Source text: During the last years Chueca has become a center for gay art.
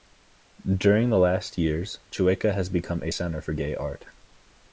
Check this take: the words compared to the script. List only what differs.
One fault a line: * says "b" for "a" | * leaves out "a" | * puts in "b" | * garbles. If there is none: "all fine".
all fine